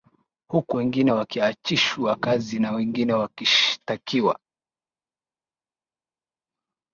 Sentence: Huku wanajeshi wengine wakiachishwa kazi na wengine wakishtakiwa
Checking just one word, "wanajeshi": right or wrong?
wrong